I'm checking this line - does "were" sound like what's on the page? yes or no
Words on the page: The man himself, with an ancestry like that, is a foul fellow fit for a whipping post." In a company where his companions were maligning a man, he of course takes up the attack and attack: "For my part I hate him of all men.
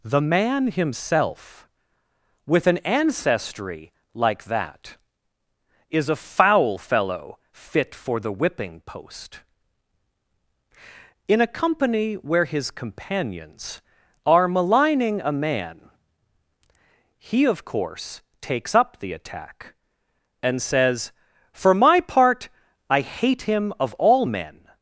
no